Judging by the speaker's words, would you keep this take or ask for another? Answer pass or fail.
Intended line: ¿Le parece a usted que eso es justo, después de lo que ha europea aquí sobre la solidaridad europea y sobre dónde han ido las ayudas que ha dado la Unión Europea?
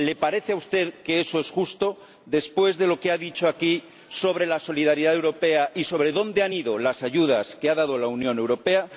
fail